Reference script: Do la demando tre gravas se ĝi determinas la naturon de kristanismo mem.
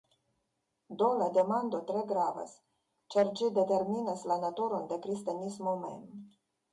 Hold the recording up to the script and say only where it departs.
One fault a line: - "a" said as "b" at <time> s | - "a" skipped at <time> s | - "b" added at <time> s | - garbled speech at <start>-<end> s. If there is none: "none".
- "se" said as "ĉar" at 3.1 s